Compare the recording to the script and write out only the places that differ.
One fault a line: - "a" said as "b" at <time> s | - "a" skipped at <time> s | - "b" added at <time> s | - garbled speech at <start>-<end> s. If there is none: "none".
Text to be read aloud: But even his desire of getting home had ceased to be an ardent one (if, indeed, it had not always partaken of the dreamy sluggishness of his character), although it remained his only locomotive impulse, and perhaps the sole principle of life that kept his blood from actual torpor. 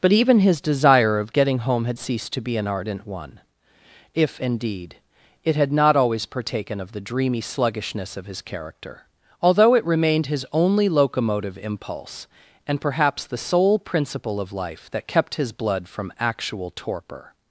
none